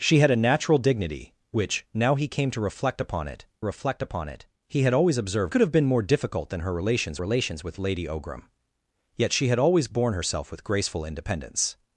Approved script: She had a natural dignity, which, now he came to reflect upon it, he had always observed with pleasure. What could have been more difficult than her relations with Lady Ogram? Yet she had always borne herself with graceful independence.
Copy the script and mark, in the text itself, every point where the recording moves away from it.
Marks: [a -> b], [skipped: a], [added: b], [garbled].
She had a natural dignity, which, now he came to reflect upon it, [added: reflect upon it] he had always observed [skipped: with pleasure. What] could have been more difficult than her relations [added: relations] with Lady Ogram? Yet she had always borne herself with graceful independence.